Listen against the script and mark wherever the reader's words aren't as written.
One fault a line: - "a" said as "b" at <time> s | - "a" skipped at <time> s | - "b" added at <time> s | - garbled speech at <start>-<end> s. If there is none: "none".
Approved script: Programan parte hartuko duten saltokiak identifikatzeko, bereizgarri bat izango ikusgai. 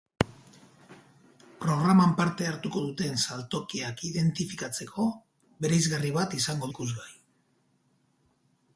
none